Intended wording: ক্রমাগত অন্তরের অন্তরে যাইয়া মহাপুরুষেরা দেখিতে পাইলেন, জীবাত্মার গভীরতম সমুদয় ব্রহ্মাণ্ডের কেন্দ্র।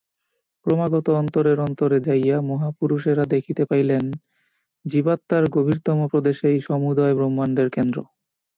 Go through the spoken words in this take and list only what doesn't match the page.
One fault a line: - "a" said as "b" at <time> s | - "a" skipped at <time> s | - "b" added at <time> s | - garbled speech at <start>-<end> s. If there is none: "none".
- "প্রদেশেই" added at 6.1 s